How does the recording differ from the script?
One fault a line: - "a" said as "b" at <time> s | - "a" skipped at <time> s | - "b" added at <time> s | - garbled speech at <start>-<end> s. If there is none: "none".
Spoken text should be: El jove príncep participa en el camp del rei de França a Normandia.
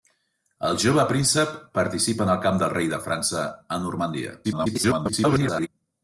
- garbled speech at 4.4-5.7 s